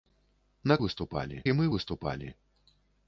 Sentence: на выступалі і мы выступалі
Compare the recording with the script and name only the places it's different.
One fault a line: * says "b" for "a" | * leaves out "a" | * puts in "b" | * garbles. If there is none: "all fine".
all fine